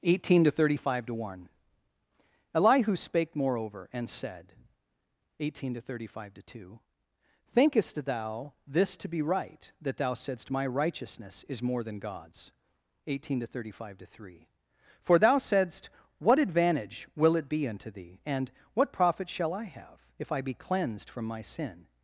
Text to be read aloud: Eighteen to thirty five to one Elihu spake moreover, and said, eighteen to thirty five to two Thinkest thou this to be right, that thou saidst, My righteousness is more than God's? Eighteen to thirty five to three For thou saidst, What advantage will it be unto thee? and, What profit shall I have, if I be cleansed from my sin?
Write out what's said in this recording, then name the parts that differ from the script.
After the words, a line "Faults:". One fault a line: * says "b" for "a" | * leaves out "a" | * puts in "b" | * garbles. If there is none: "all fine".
Eighteen to thirty five to one Elihu spake moreover, and said, eighteen to thirty five to two Thinkest thou this to be right, that thou saidst, My righteousness is more than God's? Eighteen to thirty five to three For thou saidst, What advantage will it be unto thee? and, What profit shall I have, if I be cleansed from my sin?
Faults:
all fine